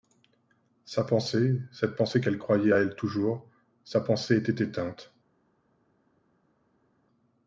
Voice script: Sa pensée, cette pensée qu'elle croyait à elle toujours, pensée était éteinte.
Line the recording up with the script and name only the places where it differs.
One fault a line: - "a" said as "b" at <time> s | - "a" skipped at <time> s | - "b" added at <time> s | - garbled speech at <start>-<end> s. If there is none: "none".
- "sa" added at 3.8 s